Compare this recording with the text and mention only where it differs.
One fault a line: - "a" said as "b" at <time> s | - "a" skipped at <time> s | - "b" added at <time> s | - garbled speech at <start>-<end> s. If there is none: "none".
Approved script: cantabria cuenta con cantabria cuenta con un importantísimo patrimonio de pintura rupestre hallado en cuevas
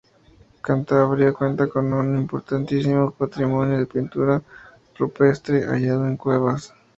- "cantabria cuenta con" skipped at 1.9 s